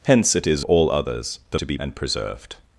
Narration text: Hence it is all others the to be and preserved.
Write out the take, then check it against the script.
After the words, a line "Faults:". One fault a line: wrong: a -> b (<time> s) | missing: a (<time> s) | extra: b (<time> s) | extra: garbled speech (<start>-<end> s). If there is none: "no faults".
Hence it is all others the to be and preserved.
Faults:
no faults